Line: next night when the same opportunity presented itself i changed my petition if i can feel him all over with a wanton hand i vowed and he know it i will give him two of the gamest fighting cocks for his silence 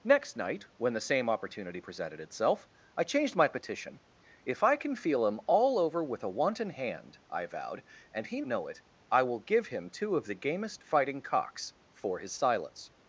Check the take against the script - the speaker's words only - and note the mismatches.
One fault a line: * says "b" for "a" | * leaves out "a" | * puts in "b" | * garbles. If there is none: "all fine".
all fine